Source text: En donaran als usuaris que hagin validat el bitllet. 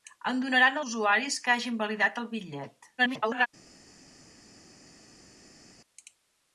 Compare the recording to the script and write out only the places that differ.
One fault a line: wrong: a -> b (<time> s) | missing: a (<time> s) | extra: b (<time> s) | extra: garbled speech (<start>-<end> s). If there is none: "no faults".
missing: als (0.8 s)
extra: garbled speech (3.0-3.5 s)